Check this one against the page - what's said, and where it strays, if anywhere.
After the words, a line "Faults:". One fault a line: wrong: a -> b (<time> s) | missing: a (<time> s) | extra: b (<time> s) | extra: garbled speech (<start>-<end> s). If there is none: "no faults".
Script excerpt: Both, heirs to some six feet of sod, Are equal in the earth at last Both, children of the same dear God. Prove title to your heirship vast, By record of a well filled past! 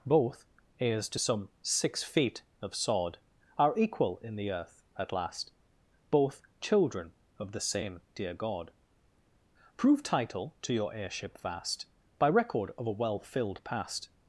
Both, heirs to some six feet of sod, Are equal in the earth at last Both, children of the same dear God. Prove title to your heirship vast, By record of a well filled past!
Faults:
no faults